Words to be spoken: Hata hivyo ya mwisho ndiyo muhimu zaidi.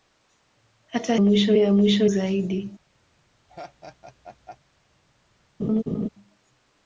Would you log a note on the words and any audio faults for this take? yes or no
yes